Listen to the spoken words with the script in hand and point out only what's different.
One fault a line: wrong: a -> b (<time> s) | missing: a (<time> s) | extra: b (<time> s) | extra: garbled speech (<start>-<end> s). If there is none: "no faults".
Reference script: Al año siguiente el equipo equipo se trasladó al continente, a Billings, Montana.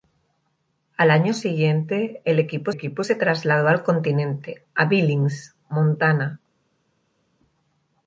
no faults